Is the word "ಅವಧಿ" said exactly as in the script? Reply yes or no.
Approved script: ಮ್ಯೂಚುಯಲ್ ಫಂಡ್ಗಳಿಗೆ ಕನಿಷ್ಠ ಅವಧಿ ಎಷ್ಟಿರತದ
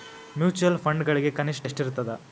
no